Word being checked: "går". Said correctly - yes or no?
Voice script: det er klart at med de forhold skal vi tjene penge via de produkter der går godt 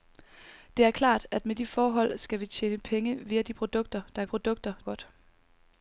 no